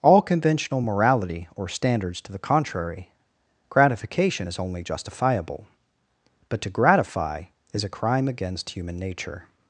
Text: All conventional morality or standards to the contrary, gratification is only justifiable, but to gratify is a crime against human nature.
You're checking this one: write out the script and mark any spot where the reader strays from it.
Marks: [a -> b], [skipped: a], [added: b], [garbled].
All conventional morality or standards to the contrary, gratification is only justifiable, but to gratify is a crime against human nature.